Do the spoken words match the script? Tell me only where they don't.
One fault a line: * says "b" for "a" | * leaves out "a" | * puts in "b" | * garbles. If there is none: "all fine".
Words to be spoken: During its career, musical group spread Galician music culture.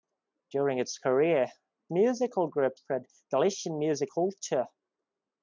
all fine